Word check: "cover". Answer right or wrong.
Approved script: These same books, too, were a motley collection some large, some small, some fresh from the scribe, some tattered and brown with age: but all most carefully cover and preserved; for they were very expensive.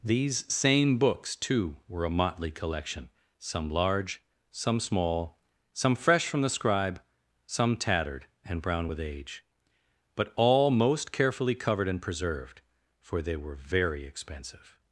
wrong